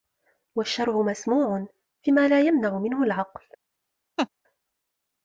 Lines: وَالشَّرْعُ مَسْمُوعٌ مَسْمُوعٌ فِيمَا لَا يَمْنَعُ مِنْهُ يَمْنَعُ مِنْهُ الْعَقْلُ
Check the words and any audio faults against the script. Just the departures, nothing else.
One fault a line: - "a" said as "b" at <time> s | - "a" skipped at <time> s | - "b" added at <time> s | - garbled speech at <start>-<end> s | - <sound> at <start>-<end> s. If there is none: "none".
- "مَسْمُوعٌ" skipped at 1.7 s
- "يَمْنَعُ مِنْهُ" skipped at 3.0 s
- laugh at 4.2-4.3 s